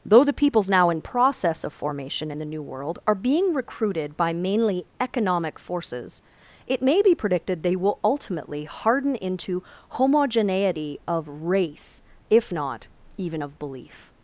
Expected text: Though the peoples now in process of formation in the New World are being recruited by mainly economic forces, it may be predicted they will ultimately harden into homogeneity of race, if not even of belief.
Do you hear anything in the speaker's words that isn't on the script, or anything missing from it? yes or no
no